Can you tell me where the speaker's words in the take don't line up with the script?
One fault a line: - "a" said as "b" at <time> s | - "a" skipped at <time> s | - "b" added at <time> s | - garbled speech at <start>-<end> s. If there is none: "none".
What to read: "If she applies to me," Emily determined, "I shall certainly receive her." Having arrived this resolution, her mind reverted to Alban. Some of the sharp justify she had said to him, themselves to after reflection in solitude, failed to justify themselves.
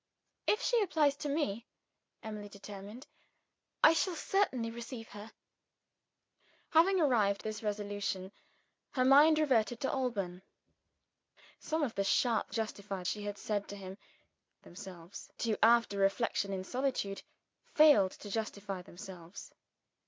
none